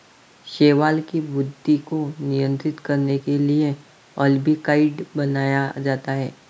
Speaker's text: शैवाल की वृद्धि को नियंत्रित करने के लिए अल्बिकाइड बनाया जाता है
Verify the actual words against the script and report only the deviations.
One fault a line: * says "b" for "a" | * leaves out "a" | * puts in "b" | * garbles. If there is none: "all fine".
all fine